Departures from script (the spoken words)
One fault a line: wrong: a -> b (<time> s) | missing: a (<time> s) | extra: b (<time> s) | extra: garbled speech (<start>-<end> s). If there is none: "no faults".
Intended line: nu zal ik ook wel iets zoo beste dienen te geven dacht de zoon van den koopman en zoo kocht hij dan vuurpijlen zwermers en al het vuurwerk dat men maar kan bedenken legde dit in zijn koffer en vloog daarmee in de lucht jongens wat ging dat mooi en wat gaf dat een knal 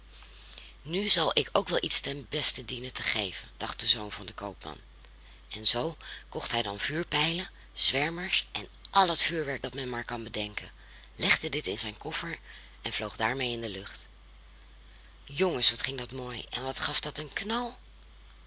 wrong: zoo -> ten (2.0 s)